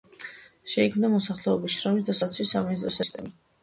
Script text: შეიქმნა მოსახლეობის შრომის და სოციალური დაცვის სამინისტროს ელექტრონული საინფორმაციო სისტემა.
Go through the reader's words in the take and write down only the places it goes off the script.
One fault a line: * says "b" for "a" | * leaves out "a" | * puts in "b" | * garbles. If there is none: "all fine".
* leaves out "სოციალური"
* leaves out "ელექტრონული საინფორმაციო"